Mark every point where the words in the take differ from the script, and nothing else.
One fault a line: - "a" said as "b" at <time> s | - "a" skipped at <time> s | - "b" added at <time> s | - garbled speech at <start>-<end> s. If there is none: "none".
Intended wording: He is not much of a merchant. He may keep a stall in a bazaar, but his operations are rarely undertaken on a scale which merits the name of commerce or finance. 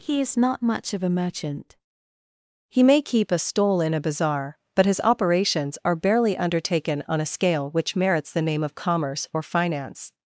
- "rarely" said as "barely" at 6.0 s